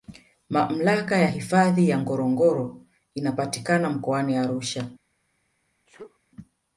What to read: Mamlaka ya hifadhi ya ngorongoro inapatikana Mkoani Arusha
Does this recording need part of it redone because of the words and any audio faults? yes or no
yes